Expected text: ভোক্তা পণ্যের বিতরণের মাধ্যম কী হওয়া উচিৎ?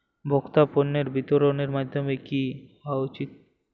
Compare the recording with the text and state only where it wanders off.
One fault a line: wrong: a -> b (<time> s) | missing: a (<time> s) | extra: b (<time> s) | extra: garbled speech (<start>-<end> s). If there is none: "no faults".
no faults